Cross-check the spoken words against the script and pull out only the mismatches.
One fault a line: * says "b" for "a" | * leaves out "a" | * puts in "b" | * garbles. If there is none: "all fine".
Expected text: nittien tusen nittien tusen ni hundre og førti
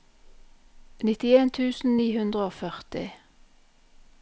* leaves out "nittien tusen"